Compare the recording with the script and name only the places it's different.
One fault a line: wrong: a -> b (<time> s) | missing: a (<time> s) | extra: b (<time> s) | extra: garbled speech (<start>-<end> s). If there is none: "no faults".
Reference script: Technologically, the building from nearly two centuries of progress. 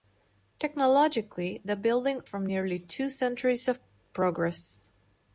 no faults